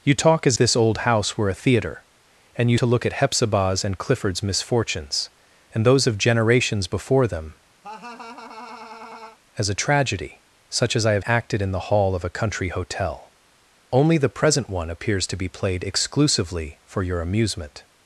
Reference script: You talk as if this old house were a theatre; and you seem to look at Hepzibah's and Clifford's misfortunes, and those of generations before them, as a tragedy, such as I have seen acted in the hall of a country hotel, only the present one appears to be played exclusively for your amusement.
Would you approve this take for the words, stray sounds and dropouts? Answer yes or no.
no